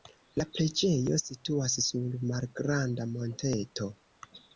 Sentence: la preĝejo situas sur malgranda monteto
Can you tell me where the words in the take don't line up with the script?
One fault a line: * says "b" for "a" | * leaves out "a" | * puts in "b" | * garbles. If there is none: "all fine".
all fine